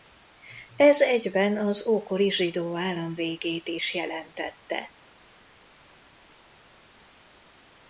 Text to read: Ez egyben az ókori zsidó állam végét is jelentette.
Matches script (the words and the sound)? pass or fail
pass